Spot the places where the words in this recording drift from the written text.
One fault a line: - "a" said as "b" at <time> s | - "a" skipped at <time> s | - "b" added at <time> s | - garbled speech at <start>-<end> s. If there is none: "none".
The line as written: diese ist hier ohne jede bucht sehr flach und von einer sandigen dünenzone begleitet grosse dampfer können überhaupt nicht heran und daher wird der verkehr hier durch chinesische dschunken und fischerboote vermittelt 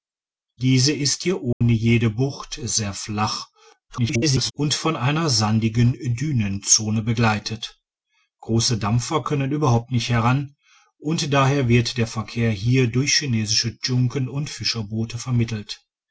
- garbled speech at 3.9-4.5 s